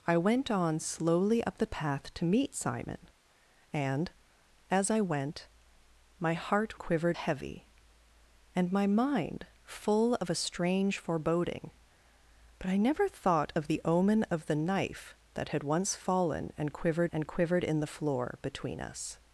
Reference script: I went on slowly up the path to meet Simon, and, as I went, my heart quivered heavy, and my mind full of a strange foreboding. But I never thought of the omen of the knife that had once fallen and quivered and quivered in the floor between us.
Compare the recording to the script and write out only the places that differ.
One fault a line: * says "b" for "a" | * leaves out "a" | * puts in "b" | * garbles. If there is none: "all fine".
all fine